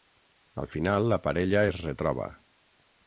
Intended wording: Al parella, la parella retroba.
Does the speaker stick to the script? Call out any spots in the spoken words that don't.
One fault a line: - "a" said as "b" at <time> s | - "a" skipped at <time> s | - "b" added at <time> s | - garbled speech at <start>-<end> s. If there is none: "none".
- "parella" said as "final" at 0.7 s
- "es" added at 1.7 s